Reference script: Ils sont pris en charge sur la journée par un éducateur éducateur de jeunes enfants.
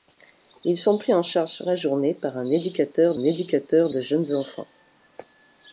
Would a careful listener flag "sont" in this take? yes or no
no